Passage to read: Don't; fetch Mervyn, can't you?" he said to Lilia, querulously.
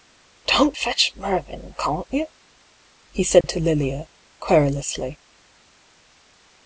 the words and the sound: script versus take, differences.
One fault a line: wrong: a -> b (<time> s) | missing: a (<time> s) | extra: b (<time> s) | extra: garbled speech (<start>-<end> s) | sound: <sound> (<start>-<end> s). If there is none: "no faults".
sound: dropout (3.4-3.4 s)